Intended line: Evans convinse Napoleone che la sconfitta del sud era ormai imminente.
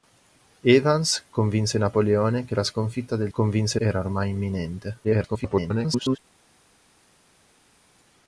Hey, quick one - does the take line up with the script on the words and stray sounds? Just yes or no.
no